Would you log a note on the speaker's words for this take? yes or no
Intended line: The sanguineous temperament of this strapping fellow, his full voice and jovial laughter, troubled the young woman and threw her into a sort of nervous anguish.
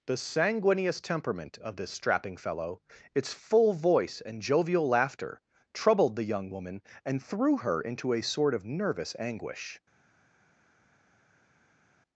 yes